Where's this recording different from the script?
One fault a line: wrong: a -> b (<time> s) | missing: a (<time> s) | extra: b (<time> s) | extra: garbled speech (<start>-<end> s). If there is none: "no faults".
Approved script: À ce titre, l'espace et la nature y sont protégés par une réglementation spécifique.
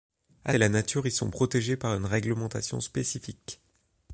missing: ce titre l'espace (0.6 s)